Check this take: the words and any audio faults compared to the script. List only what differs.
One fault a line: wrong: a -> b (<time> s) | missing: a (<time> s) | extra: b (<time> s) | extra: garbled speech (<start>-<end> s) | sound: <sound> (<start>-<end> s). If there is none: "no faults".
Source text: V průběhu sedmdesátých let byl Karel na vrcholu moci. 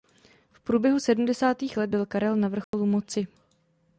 sound: dropout (2.6-2.7 s)